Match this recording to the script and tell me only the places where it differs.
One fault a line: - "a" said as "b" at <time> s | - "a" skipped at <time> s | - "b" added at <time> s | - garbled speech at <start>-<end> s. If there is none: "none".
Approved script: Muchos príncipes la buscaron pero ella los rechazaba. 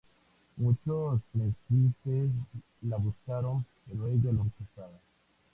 none